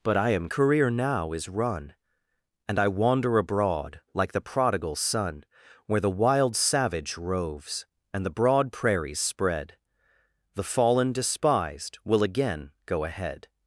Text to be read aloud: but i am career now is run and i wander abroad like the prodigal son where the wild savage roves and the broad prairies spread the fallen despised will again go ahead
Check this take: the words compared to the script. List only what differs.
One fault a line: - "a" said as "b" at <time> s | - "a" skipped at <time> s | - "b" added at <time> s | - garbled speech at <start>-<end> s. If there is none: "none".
none